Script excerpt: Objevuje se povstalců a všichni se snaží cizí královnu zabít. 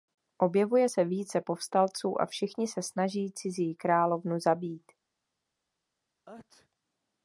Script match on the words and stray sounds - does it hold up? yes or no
no